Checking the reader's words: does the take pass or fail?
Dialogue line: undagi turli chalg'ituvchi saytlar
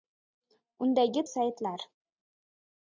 fail